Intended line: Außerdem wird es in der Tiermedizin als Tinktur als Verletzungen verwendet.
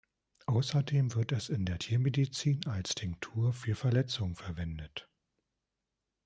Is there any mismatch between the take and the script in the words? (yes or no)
yes